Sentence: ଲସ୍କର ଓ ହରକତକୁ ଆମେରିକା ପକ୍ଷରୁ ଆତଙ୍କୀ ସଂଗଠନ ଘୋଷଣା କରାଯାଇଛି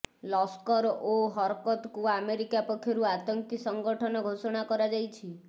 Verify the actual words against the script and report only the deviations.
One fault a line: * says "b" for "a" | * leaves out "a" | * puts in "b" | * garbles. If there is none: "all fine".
all fine